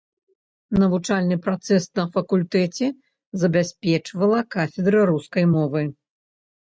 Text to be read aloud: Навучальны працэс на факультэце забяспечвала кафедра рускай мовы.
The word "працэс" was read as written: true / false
true